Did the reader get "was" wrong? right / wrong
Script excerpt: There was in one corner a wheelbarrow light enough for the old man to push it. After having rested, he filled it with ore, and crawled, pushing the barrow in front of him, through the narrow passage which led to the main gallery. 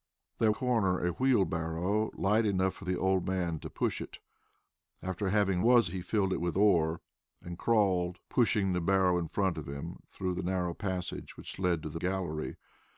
wrong